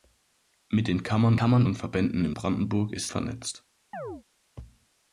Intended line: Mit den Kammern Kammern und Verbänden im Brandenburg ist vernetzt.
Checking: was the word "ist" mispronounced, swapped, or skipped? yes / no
no